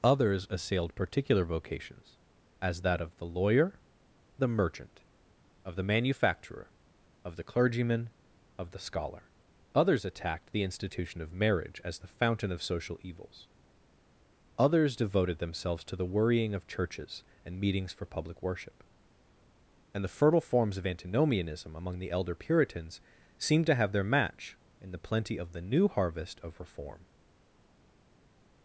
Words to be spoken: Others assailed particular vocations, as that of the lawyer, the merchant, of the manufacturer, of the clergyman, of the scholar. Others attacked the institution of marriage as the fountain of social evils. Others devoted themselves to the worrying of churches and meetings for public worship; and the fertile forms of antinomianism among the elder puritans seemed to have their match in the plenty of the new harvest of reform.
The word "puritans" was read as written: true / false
true